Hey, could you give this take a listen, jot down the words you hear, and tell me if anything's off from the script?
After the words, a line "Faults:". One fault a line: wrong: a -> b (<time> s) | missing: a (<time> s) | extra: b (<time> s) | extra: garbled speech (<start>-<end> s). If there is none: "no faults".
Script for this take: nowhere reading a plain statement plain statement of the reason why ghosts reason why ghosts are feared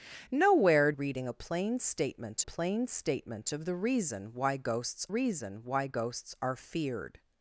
nowhere reading a plain statement plain statement of the reason why ghosts reason why ghosts are feared
Faults:
no faults